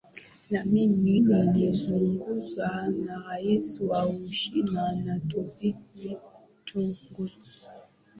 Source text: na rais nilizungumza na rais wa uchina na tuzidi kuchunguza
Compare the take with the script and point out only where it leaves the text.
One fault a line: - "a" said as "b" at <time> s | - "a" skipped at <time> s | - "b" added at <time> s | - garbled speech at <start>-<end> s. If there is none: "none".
- "rais" said as "mimi" at 0.7 s